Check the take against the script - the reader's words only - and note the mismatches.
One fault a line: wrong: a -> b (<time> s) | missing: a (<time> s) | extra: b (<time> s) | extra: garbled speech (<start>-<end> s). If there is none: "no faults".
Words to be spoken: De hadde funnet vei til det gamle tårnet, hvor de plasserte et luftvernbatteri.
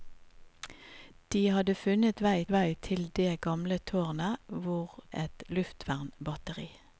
extra: vei (2.5 s)
missing: de plasserte (5.0 s)